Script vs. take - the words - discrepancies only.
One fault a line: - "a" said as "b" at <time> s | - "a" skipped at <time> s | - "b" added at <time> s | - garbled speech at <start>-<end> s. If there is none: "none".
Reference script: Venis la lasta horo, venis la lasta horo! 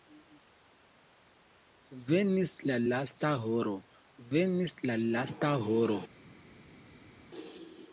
none